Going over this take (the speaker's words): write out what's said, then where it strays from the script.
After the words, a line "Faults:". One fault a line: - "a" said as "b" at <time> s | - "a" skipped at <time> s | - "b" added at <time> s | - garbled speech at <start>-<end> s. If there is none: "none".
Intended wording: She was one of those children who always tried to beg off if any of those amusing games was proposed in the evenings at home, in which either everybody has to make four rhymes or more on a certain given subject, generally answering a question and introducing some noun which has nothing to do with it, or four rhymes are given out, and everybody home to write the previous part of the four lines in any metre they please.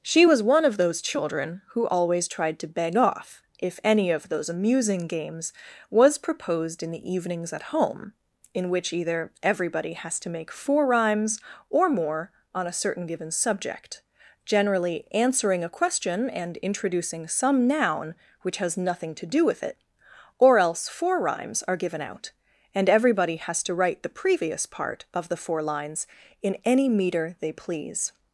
She was one of those children who always tried to beg off if any of those amusing games was proposed in the evenings at home, in which either everybody has to make four rhymes or more on a certain given subject, generally answering a question and introducing some noun which has nothing to do with it, or else four rhymes are given out, and everybody has to write the previous part of the four lines in any metre they please.
Faults:
- "else" added at 20.6 s
- "home" said as "has" at 23.4 s